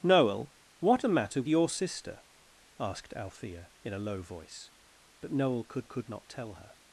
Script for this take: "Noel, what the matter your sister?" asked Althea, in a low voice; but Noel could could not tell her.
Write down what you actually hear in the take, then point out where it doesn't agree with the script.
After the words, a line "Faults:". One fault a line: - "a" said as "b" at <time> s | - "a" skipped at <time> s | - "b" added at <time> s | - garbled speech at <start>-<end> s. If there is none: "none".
"Noel, what the matter your sister?" asked Althea, in a low voice; but Noel could could not tell her.
Faults:
none